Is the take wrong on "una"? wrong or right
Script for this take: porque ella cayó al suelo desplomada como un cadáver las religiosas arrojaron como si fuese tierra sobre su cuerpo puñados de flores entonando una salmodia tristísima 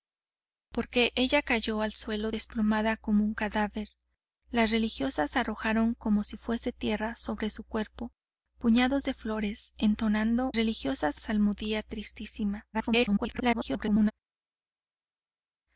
wrong